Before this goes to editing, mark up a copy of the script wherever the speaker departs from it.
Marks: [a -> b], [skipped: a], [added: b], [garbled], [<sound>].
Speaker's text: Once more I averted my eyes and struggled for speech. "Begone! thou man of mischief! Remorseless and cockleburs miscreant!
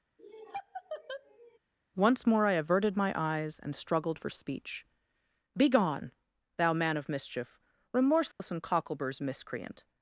[laugh] Once more I averted my eyes and struggled for speech. "Begone! thou man of mischief! Remorseless [dropout] and cockleburs miscreant!